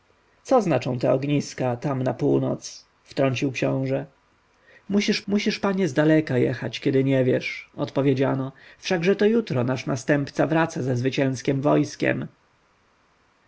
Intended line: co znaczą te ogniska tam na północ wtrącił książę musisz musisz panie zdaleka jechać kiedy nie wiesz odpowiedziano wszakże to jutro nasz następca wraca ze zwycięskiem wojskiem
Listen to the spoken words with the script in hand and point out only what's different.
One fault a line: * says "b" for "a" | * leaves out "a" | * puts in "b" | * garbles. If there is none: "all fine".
all fine